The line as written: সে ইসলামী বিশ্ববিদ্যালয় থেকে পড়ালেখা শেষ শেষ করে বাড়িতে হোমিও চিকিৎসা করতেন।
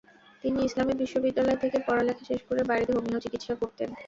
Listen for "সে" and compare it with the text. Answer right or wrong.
wrong